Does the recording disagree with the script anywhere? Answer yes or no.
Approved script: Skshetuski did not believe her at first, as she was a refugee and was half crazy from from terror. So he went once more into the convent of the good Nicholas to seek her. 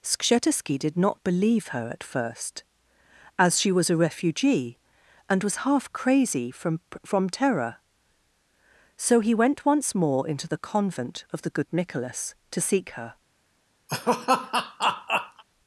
no